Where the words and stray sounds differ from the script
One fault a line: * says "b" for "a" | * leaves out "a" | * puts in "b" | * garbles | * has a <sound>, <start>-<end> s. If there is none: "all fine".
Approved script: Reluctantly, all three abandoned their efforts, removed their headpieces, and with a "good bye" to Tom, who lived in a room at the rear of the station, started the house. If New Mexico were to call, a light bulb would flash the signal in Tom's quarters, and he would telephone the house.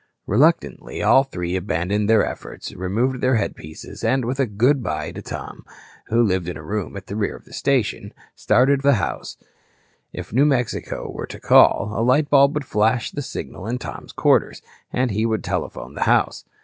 all fine